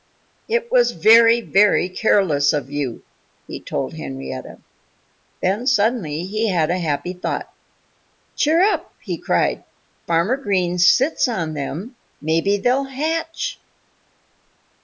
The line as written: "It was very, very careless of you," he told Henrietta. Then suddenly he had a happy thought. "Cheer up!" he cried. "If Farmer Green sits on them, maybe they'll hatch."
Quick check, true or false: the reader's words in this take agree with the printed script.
false